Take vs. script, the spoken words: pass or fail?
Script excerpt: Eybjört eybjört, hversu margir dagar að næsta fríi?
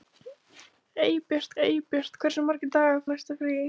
pass